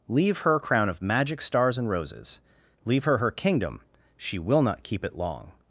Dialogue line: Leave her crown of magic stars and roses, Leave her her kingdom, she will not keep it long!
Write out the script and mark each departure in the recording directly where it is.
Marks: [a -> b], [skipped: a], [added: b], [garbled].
Leave her crown of magic stars and roses, Leave her her kingdom, she will not keep it long!